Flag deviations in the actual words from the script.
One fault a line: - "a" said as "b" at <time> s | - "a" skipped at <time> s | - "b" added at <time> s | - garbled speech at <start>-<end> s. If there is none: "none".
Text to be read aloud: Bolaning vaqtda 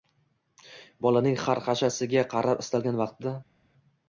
- "xarxashasiga qarab istalgan" added at 1.4 s